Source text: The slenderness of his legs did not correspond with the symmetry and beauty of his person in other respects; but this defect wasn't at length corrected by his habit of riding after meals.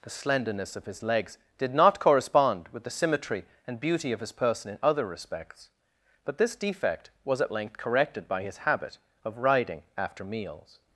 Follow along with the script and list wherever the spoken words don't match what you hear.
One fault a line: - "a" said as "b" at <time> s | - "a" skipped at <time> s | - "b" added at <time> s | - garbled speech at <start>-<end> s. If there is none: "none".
- "wasn't" said as "was" at 7.2 s